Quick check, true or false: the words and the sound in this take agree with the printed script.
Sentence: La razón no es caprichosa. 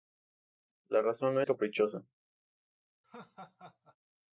false